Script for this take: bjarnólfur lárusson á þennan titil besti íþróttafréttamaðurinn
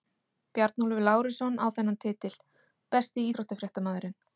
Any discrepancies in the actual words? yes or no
no